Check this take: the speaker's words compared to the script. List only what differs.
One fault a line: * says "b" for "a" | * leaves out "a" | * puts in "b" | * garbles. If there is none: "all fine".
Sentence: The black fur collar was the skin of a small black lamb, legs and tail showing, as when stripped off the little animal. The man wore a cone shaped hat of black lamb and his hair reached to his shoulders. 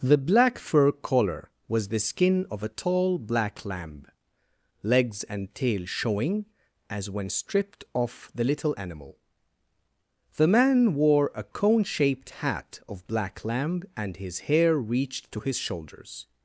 * says "tall" for "small"